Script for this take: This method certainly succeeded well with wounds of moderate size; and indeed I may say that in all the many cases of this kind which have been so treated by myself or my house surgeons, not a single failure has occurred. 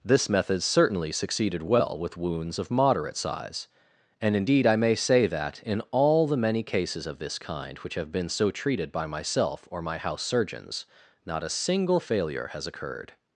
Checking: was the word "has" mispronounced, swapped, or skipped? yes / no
no